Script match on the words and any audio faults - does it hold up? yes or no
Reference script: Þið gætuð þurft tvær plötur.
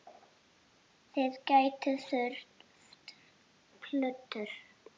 no